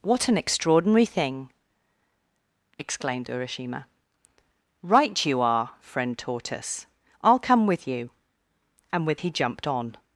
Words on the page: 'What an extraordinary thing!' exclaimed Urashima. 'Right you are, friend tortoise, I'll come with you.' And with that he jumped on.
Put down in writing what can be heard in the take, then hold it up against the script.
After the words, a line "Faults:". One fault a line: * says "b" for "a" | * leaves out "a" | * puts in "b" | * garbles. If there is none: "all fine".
'What an extraordinary thing!' exclaimed Urashima. 'Right you are, friend tortoise, I'll come with you.' And with he jumped on.
Faults:
* leaves out "that"